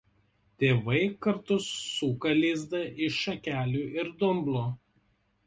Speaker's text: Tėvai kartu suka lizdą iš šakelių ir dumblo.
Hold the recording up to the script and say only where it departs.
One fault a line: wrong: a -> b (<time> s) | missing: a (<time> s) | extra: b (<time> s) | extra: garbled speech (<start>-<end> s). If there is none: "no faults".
no faults